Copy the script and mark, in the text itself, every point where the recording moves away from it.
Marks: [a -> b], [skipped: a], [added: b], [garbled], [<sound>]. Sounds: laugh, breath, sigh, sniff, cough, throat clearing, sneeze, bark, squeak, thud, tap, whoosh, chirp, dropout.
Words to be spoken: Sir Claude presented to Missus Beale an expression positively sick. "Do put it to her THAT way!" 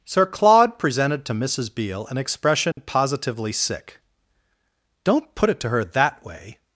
Sir Claude presented to Missus Beale an expression [dropout] positively sick. ["Do -> Don't] put it to her THAT way!"